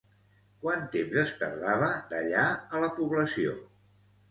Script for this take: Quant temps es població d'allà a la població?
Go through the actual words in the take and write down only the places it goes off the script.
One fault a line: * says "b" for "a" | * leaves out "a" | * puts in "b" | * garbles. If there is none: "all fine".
* says "tardava" for "població"